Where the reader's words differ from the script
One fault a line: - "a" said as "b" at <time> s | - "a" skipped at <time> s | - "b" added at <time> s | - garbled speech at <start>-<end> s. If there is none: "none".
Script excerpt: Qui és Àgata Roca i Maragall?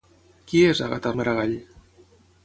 - "Roca" skipped at 1.1 s